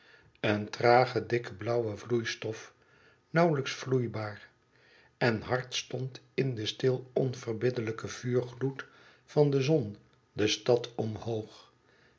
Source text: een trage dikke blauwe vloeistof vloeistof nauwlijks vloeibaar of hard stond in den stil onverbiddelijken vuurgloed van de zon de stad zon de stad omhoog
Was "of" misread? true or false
true